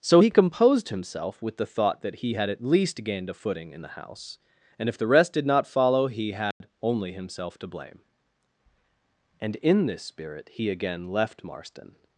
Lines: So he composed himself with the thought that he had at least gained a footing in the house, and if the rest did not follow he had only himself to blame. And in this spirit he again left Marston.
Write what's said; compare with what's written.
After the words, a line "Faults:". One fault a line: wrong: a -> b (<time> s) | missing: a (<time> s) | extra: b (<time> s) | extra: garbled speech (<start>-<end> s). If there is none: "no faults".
So he composed himself with the thought that he had at least gained a footing in the house, and if the rest did not follow he had only himself to blame. And in this spirit he again left Marston.
Faults:
no faults